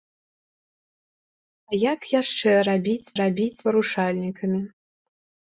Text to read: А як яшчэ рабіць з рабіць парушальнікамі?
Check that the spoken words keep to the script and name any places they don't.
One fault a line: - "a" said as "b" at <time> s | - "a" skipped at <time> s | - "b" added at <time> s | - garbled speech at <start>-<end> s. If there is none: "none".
none